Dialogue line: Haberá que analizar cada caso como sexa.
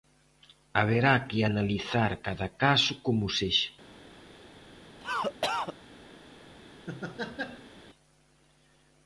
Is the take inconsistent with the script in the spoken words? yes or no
no